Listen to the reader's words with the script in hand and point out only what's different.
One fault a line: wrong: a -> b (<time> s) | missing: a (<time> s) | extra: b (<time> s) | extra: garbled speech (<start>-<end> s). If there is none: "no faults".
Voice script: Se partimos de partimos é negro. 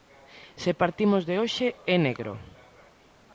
wrong: partimos -> hoxe (1.4 s)